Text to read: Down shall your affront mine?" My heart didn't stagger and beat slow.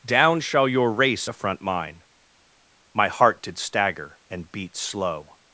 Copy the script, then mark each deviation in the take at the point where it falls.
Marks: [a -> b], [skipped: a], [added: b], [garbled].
Down shall your [added: race] affront mine?" My heart [didn't -> did] stagger and beat slow.